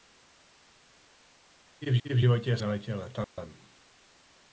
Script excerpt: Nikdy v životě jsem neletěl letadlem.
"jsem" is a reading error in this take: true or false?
true